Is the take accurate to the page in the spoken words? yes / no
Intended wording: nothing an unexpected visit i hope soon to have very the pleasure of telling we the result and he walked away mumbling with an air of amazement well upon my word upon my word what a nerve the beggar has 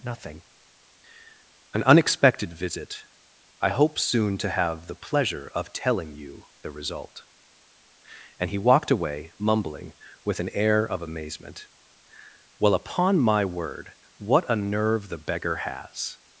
no